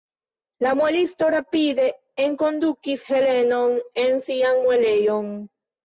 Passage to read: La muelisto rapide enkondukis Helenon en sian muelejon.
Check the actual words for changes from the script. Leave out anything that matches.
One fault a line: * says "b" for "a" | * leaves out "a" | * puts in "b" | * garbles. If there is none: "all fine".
all fine